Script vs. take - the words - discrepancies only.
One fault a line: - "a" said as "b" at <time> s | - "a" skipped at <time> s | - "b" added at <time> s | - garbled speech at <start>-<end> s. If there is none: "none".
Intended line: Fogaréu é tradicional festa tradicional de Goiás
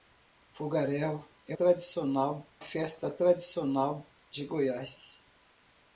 none